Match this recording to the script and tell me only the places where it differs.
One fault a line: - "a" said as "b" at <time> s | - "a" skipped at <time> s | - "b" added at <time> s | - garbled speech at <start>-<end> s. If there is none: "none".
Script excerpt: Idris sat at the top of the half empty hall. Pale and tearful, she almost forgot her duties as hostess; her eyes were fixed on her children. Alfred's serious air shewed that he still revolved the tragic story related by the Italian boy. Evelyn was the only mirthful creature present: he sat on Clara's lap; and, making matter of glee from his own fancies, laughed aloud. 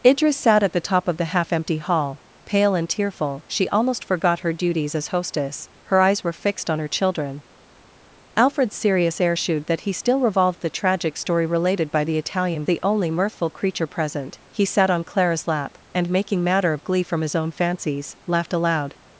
- "boy Evelyn was" skipped at 12.6 s